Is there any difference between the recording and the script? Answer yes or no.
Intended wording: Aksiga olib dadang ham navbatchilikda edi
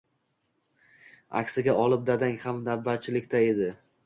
no